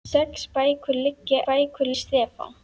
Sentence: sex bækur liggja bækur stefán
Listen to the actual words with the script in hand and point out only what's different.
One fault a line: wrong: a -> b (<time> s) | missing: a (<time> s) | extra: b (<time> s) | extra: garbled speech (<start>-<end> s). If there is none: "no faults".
no faults